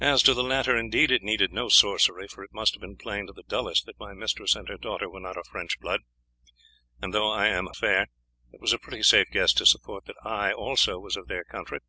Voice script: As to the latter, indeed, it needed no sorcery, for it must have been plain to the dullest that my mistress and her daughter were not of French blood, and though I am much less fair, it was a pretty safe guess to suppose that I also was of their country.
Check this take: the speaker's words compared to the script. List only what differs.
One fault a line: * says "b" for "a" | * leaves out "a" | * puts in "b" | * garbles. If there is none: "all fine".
* leaves out "much less"